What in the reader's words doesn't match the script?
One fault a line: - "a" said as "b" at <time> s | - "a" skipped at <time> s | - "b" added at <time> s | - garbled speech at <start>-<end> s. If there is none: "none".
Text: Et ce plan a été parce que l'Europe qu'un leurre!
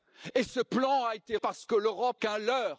none